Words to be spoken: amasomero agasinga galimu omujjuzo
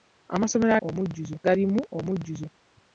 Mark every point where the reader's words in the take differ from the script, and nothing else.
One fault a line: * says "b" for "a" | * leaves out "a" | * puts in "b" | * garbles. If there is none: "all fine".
* says "omujjuzo" for "agasinga"